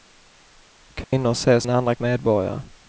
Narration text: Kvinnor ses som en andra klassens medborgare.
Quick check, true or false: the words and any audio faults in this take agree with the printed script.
false